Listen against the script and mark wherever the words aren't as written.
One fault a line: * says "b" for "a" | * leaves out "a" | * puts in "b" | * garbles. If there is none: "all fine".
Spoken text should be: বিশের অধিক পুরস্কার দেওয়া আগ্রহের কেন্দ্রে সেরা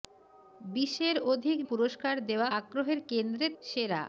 all fine